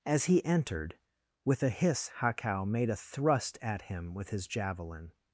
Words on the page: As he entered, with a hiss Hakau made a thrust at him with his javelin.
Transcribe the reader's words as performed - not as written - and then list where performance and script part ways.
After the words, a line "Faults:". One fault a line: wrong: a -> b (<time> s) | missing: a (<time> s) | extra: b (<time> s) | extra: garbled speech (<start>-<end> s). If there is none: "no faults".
As he entered, with a hiss Hakau made a thrust at him with his javelin.
Faults:
no faults